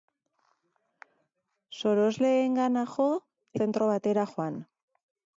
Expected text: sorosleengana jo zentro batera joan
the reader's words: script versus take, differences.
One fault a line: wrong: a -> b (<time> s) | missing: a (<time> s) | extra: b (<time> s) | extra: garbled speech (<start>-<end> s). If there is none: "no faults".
no faults